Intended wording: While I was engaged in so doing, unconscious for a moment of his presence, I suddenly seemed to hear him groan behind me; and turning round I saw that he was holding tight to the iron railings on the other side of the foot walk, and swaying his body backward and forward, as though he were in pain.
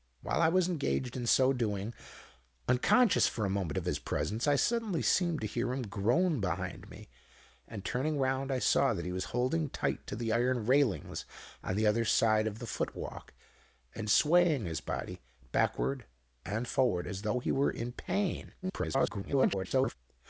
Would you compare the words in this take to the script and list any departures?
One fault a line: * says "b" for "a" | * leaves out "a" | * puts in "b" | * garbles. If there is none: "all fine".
* garbles